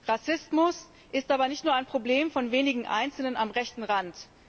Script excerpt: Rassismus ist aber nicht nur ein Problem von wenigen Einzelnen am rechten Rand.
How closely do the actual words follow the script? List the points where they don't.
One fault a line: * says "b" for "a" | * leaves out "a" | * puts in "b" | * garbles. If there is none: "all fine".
all fine